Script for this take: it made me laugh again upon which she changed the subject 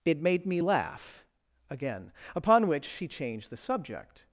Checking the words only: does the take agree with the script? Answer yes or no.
yes